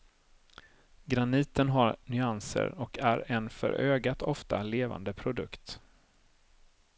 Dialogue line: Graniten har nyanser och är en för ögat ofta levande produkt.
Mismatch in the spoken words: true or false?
false